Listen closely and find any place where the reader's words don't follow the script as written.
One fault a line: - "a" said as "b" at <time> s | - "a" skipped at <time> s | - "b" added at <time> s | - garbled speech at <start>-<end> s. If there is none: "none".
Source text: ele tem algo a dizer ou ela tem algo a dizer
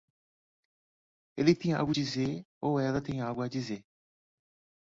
none